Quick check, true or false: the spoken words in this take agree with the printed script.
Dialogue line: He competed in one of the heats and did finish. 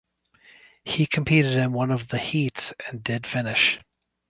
true